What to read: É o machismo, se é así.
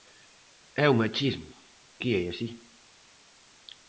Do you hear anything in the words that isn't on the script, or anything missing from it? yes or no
yes